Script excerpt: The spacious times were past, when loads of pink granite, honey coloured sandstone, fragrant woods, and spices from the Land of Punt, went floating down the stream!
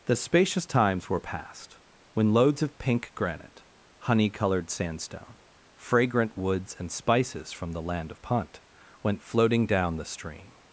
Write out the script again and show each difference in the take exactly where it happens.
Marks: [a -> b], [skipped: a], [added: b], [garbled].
The spacious times were past, when loads of pink granite, honey coloured sandstone, fragrant woods, and spices from the Land of Punt, went floating down the stream!